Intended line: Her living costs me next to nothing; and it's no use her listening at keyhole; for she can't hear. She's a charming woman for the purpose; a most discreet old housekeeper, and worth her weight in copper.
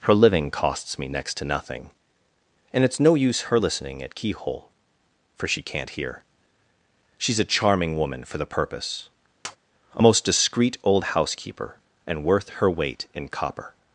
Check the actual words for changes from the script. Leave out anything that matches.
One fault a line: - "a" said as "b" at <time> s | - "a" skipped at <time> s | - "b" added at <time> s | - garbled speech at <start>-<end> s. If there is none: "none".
none